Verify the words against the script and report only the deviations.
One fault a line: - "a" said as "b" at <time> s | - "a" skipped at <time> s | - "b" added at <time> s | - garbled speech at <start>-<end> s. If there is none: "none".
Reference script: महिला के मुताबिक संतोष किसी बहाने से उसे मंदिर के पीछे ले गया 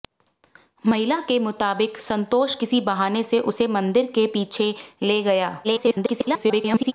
- garbled speech at 5.6-6.9 s